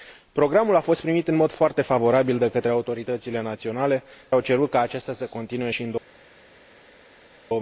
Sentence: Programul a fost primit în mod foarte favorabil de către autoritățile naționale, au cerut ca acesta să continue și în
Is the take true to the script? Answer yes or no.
yes